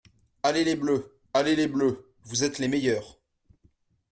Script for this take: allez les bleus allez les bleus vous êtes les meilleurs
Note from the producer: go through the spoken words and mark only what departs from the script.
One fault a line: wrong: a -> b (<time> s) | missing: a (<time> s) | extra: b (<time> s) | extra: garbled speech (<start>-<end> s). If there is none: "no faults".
no faults